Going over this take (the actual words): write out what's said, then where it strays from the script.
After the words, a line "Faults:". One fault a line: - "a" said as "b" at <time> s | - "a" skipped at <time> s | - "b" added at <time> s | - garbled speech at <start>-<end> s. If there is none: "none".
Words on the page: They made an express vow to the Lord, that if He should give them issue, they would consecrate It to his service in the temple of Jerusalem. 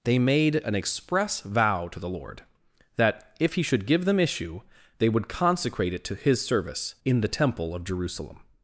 They made an express vow to the Lord, that if He should give them issue, they would consecrate It to his service in the temple of Jerusalem.
Faults:
none